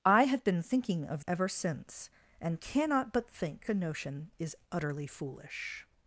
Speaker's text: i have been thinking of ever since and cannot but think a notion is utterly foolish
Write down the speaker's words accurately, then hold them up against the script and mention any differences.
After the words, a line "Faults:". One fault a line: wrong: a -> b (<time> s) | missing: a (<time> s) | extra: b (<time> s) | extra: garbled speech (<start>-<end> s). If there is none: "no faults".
i have been thinking of ever since and cannot but think a notion is utterly foolish
Faults:
no faults